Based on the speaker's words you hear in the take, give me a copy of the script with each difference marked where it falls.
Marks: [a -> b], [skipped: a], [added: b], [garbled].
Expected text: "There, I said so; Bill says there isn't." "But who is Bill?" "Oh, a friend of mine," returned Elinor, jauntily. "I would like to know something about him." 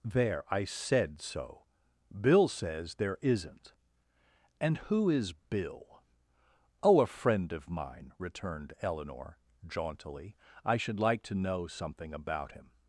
"There, I said so; Bill says there isn't." ["But -> And] who is Bill?" "Oh, a friend of mine," returned Elinor, jauntily. "I [would -> should] like to know something about him."